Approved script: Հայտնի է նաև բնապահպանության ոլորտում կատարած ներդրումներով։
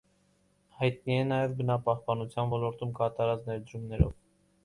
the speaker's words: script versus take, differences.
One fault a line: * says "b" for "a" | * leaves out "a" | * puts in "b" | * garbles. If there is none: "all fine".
all fine